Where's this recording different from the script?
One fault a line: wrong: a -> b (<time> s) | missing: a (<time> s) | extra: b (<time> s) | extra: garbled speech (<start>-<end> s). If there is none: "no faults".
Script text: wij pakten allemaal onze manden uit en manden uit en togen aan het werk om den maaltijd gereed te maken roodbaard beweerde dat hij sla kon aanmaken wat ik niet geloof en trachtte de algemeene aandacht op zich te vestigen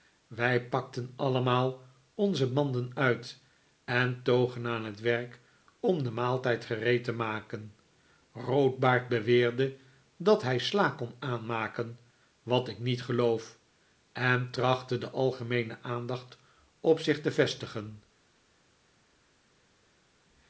missing: manden uit en (4.2 s)